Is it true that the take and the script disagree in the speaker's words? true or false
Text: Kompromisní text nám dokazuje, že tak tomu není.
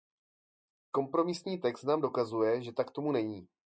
false